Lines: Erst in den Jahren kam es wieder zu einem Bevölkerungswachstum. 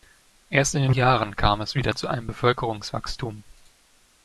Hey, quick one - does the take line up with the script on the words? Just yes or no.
yes